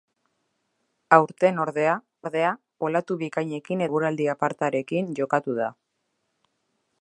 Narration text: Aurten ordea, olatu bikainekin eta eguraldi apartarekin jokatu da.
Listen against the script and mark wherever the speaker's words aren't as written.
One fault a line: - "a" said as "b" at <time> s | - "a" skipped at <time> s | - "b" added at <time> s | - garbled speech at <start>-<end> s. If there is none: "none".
- "ordea" added at 2.2 s
- "eta" skipped at 3.8 s